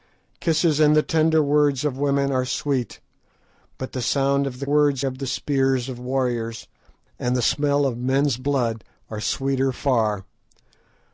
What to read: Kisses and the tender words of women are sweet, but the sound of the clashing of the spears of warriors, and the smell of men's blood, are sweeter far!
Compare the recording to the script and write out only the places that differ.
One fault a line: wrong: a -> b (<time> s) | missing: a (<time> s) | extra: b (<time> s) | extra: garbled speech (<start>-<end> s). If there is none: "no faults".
wrong: clashing -> words (4.6 s)